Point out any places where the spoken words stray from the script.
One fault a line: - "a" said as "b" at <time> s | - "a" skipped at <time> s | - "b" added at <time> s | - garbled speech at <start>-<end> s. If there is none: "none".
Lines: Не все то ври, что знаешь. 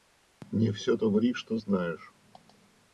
none